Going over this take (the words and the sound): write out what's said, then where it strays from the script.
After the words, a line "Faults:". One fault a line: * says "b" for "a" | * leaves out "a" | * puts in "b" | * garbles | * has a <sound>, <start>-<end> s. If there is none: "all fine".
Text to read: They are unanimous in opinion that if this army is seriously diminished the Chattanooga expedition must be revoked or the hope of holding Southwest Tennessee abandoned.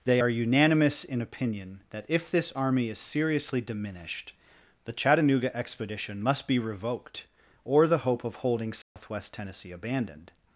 They are unanimous in opinion that if this army is seriously diminished the Chattanooga expedition must be revoked or the hope of holding Southwest Tennessee abandoned.
Faults:
* has a dropout, 8.8-9.0 s